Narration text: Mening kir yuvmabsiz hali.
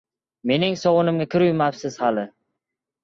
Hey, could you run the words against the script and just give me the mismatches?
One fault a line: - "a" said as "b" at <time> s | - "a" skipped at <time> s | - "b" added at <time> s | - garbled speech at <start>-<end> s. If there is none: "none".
- "sovunimga" added at 0.8 s